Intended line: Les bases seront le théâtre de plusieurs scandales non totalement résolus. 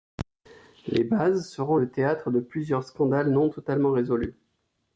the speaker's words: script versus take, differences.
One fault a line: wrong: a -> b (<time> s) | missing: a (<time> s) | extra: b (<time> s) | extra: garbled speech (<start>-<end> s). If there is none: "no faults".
no faults